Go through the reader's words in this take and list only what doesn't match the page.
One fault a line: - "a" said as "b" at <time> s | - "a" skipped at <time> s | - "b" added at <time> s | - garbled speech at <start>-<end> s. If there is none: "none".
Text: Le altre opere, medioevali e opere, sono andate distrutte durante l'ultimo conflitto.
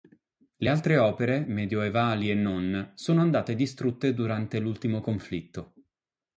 - "opere" said as "non" at 2.4 s